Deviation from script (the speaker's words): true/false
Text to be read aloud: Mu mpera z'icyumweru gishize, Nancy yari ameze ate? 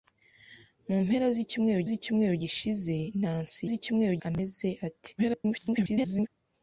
true